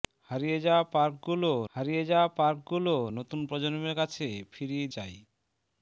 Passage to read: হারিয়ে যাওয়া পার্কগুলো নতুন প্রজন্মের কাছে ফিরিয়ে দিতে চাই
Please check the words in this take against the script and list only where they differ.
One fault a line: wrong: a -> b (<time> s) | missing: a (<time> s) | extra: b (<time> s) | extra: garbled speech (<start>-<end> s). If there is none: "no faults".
extra: হারিয়ে যাওয়া পার্কগুলো (1.7 s)
missing: দিতে (4.9 s)